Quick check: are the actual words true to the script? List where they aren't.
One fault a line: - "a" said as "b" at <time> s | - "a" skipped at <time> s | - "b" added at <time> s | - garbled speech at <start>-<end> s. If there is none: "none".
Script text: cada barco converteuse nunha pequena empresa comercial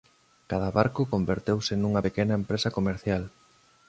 none